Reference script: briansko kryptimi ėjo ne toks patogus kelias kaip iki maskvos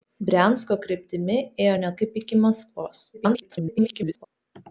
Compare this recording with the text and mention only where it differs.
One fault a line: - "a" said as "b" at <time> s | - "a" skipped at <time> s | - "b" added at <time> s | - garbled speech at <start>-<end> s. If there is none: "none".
- "toks patogus kelias" skipped at 1.9 s
- garbled speech at 3.1-4.3 s